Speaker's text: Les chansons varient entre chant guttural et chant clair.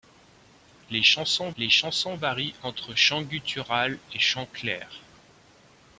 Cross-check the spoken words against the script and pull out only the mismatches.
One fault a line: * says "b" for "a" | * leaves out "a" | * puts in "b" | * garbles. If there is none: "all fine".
* puts in "les chansons"